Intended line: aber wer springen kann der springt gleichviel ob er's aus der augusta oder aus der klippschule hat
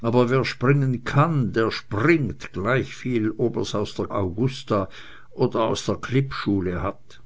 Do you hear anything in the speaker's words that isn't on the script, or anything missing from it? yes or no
no